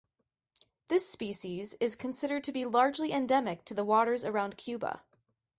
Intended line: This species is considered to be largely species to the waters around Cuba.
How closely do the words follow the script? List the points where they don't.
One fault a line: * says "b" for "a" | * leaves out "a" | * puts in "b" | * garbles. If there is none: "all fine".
* says "endemic" for "species"